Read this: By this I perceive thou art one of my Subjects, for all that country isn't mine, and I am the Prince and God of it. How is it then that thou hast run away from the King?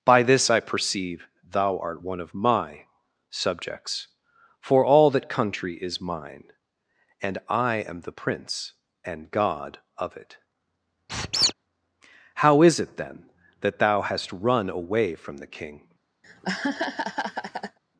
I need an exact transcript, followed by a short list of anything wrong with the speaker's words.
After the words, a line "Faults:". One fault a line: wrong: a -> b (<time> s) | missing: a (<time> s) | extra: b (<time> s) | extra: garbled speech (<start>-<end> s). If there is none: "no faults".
By this I perceive thou art one of my Subjects, for all that country is mine, and I am the Prince and God of it. How is it then that thou hast run away from the King?
Faults:
wrong: isn't -> is (5.8 s)